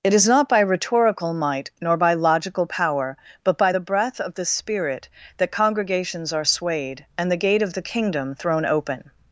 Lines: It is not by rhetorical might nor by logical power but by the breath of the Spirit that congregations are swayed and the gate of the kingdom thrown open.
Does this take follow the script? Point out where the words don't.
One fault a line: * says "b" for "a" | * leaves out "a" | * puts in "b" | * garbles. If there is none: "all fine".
all fine